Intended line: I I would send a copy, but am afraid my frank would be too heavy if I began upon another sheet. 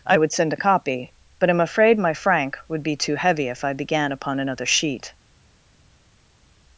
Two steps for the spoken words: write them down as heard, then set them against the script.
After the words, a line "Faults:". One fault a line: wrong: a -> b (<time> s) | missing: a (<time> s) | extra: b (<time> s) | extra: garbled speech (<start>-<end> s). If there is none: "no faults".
I would send a copy, but am afraid my frank would be too heavy if I began upon another sheet.
Faults:
missing: I (0.2 s)